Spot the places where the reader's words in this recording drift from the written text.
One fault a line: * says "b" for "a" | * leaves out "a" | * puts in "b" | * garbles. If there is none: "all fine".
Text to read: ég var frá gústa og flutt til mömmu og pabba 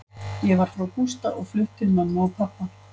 all fine